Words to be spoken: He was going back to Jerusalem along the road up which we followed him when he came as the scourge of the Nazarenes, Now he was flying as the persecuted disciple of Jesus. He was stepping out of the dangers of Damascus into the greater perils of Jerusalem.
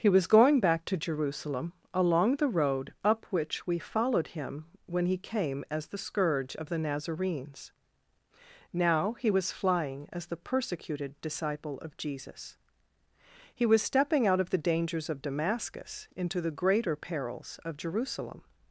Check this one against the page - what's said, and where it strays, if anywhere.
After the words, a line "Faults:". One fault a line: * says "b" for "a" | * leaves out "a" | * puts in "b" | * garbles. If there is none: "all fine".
He was going back to Jerusalem along the road up which we followed him when he came as the scourge of the Nazarenes, Now he was flying as the persecuted disciple of Jesus. He was stepping out of the dangers of Damascus into the greater perils of Jerusalem.
Faults:
all fine